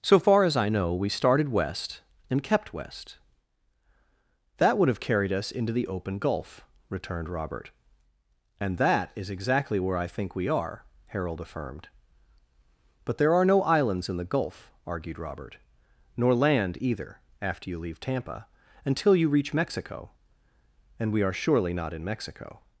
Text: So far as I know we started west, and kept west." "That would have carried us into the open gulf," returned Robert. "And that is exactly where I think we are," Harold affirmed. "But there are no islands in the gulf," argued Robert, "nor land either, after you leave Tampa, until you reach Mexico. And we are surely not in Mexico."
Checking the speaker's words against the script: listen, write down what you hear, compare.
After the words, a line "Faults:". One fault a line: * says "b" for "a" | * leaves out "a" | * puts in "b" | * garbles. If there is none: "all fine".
So far as I know we started west, and kept west." "That would have carried us into the open gulf," returned Robert. "And that is exactly where I think we are," Harold affirmed. "But there are no islands in the gulf," argued Robert, "nor land either, after you leave Tampa, until you reach Mexico. And we are surely not in Mexico."
Faults:
all fine